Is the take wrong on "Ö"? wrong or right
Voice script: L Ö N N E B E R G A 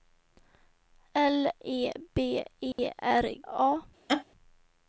wrong